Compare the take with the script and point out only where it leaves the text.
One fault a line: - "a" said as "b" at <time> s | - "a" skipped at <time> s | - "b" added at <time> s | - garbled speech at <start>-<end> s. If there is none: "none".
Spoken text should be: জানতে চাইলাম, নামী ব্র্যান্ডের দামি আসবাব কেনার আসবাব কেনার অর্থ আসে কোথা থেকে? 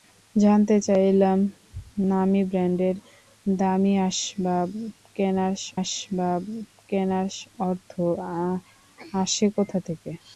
none